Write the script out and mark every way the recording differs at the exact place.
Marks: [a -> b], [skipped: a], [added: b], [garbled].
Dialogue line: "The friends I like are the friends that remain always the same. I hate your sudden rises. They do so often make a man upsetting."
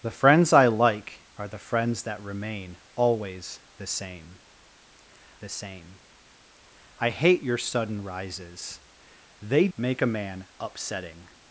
"The friends I like are the friends that remain always the same. [added: the same] I hate your sudden rises. They [skipped: do so often] make a man upsetting."